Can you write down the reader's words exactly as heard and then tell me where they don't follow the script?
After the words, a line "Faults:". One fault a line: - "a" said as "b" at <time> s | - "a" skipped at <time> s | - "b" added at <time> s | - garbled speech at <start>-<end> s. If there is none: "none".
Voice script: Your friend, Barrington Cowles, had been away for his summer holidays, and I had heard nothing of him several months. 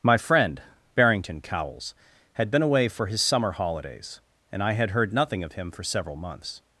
My friend, Barrington Cowles, had been away for his summer holidays, and I had heard nothing of him for several months.
Faults:
- "Your" said as "My" at 0.0 s
- "for" added at 5.7 s